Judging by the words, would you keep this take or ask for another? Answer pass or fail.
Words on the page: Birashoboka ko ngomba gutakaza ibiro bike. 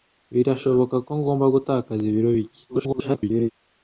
fail